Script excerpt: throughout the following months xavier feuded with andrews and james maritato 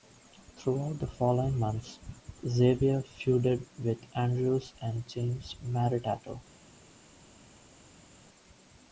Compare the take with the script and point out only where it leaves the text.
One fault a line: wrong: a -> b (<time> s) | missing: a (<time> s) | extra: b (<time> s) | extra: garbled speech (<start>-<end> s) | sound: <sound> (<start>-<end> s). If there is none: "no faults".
no faults